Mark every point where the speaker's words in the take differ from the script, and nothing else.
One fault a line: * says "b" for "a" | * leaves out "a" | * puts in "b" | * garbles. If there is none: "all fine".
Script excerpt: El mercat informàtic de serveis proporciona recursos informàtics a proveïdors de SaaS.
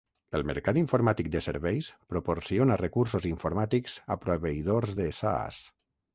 all fine